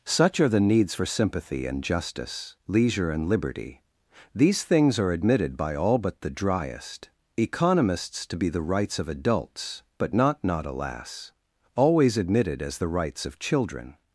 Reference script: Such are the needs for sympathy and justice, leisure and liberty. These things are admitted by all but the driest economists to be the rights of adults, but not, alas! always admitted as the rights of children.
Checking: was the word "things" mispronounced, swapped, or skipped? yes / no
no